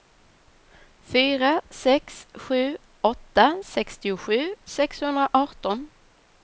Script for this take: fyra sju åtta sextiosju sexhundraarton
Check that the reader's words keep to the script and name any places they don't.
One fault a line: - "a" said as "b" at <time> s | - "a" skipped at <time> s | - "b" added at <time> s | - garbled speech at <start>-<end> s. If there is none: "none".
- "sex" added at 1.8 s